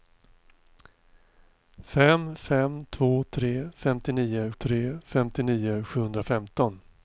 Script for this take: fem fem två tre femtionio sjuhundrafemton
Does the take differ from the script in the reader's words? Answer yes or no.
yes